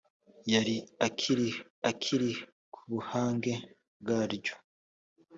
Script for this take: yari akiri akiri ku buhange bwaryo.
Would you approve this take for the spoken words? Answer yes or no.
yes